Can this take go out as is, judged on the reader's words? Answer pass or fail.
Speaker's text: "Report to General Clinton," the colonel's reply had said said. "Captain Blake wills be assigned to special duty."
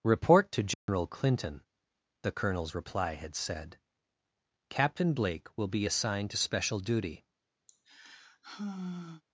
fail